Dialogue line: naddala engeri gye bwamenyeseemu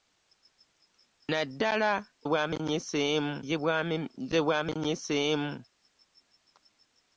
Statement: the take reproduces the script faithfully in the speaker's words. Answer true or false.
false